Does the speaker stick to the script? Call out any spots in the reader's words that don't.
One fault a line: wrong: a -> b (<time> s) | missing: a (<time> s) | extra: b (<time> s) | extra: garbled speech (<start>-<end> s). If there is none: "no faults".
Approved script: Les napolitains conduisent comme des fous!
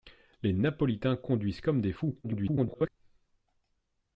extra: garbled speech (2.2-2.9 s)